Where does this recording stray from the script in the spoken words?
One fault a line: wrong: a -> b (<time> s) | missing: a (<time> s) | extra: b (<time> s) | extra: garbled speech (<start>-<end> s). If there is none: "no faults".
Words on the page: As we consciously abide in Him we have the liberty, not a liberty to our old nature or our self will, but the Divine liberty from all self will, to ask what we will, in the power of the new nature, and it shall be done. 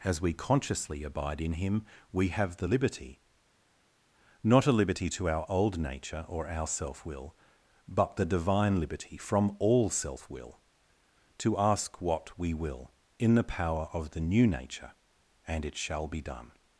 no faults